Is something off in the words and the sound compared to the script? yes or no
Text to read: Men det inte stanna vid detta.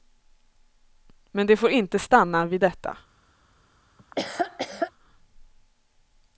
yes